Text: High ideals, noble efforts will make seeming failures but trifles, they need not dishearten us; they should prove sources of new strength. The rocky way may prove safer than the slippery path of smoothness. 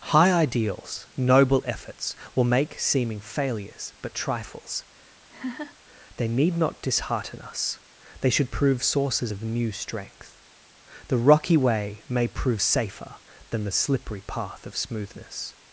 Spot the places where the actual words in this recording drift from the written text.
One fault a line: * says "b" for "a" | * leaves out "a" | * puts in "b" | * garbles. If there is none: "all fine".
all fine